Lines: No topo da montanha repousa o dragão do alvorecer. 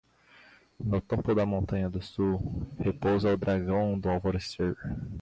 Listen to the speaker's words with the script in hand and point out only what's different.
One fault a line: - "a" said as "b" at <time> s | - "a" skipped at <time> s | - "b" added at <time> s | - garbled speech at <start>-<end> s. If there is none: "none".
- "do sul" added at 1.9 s